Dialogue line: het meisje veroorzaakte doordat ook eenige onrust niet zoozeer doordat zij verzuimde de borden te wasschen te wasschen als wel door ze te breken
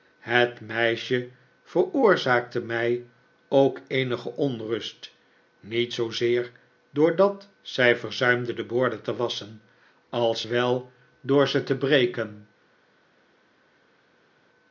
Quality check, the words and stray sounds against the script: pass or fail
fail